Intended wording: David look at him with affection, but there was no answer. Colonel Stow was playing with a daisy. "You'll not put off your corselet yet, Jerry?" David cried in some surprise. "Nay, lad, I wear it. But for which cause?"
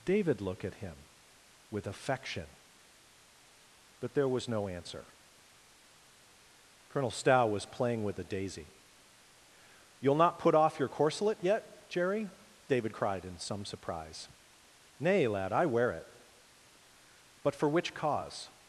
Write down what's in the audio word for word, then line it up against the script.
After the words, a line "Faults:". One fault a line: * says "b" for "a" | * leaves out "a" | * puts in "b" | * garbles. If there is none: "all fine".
David look at him with affection, but there was no answer. Colonel Stow was playing with a daisy. "You'll not put off your corselet yet, Jerry?" David cried in some surprise. "Nay, lad, I wear it. But for which cause?"
Faults:
all fine